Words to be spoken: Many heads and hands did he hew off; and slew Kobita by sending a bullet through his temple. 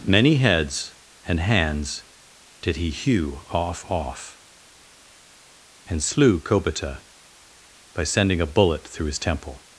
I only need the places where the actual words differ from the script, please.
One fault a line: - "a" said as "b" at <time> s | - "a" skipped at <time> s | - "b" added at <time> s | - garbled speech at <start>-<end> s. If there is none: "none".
- "off" added at 3.9 s